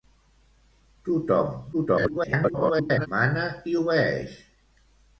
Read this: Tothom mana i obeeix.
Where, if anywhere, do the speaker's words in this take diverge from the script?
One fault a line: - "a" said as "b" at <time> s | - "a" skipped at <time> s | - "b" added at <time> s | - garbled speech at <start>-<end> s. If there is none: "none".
- garbled speech at 1.7-3.1 s